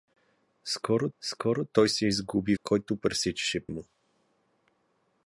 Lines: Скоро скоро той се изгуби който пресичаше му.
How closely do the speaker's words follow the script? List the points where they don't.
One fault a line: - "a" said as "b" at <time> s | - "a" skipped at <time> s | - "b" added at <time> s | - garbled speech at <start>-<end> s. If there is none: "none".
none